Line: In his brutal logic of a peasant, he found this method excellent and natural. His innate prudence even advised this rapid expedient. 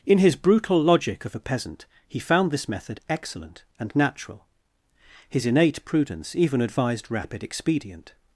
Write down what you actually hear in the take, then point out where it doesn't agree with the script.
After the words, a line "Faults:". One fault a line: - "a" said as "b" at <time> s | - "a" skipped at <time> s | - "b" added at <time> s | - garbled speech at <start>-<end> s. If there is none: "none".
In his brutal logic of a peasant, he found this method excellent and natural. His innate prudence even advised rapid expedient.
Faults:
- "this" skipped at 7.1 s